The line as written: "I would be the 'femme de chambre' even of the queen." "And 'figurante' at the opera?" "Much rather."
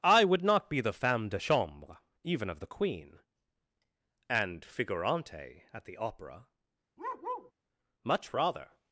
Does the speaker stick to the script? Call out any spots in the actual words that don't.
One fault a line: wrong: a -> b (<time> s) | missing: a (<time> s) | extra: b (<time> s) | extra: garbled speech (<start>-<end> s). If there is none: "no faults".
extra: not (0.4 s)